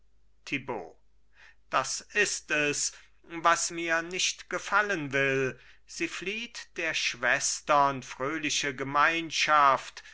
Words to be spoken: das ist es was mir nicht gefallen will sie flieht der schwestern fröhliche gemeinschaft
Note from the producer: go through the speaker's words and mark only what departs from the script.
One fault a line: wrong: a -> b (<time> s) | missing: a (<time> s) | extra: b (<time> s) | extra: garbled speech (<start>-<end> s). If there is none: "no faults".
no faults